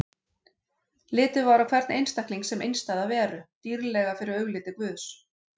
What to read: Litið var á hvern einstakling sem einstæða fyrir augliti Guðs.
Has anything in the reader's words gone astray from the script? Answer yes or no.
yes